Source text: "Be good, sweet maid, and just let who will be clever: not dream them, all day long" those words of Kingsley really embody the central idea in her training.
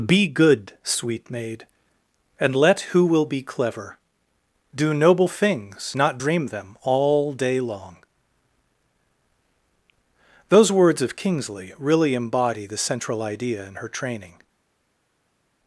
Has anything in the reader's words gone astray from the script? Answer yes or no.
yes